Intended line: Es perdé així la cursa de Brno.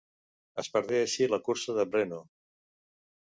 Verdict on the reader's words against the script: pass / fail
pass